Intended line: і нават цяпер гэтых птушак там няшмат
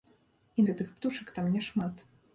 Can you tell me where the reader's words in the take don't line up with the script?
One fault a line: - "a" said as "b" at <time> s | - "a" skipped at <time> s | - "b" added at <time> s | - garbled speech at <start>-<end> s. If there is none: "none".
- "нават цяпер" skipped at 0.7 s